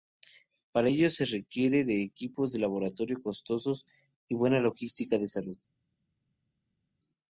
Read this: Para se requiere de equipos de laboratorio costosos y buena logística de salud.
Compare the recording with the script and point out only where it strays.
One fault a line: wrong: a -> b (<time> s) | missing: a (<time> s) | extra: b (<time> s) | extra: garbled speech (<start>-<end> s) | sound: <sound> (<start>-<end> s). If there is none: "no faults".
extra: ello (0.9 s)